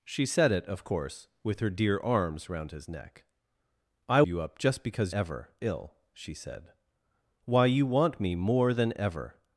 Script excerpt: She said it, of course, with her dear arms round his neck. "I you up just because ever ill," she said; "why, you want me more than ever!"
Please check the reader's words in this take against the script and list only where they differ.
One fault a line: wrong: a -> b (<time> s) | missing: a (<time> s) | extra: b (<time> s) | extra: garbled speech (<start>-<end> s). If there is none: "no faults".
no faults